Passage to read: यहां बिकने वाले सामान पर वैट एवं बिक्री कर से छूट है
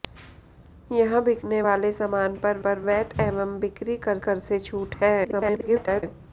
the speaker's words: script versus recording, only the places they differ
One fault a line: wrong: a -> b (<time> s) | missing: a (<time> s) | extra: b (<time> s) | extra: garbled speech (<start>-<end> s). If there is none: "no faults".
extra: पर (2.7 s)
extra: कर (4.3 s)
extra: garbled speech (5.2-6.0 s)